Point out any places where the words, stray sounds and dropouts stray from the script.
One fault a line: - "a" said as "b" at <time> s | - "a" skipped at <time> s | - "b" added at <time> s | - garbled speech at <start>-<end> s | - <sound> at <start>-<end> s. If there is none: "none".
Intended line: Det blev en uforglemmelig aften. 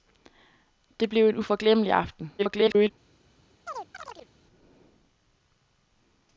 - garbled speech at 2.4-2.9 s
- chirp at 3.7-4.3 s